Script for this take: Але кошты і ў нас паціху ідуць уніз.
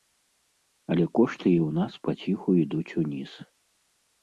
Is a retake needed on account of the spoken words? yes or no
no